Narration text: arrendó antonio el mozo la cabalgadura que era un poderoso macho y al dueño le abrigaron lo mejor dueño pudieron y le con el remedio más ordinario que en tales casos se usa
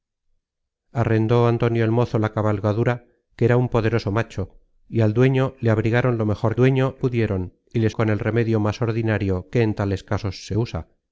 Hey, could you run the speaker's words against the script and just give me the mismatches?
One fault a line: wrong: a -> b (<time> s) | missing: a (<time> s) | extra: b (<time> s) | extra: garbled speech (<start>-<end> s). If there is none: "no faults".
no faults